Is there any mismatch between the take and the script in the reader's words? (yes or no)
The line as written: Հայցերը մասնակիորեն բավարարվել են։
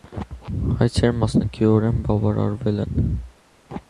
no